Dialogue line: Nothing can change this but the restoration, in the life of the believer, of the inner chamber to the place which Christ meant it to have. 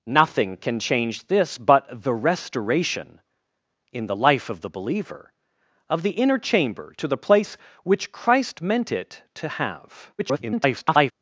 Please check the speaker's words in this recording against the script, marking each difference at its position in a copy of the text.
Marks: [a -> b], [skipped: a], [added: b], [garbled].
Nothing can change this but the restoration, in the life of the believer, of the inner chamber to the place which Christ meant it to have. [garbled]